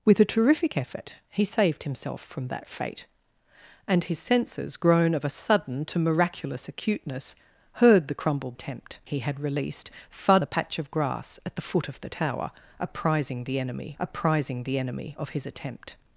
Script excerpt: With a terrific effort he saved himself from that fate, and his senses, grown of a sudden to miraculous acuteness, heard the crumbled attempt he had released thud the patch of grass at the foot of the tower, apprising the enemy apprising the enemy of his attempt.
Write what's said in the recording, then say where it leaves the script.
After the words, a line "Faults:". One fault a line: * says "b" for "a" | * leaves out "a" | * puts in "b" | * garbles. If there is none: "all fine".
With a terrific effort he saved himself from that fate, and his senses, grown of a sudden to miraculous acuteness, heard the crumbled attempt he had released thud the patch of grass at the foot of the tower, apprising the enemy apprising the enemy of his attempt.
Faults:
all fine